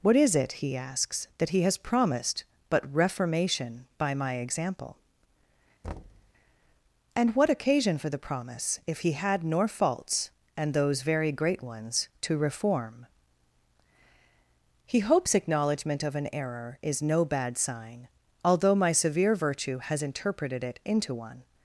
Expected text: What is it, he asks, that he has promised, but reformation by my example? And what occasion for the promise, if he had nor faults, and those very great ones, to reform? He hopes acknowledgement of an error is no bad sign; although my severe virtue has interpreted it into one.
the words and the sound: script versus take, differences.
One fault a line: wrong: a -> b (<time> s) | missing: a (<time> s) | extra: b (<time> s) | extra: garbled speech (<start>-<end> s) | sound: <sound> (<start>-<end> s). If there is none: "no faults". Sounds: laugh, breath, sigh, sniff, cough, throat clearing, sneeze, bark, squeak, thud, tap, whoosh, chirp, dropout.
sound: thud (5.8-6.3 s)